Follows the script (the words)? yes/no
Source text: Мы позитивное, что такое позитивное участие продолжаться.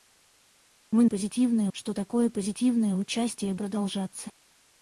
yes